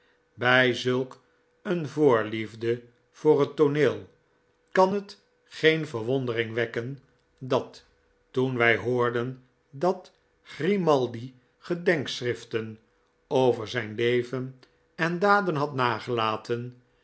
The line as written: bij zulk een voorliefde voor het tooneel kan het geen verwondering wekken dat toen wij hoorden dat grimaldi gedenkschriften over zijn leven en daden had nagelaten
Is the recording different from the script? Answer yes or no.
no